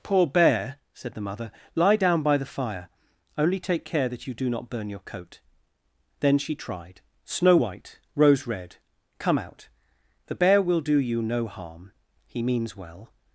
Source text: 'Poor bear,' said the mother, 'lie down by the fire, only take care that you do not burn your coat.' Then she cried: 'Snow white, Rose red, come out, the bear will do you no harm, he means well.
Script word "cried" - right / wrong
wrong